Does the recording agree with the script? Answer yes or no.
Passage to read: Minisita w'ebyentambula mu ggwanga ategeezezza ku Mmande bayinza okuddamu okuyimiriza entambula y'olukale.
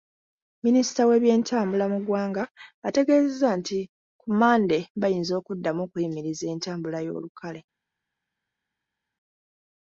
no